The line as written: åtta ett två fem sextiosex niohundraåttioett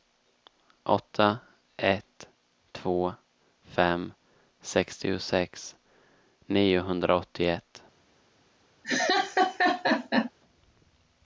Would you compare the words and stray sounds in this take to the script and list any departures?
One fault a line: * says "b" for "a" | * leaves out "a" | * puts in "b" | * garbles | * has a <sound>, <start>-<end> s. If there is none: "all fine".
* has a laugh, 8.8-10.3 s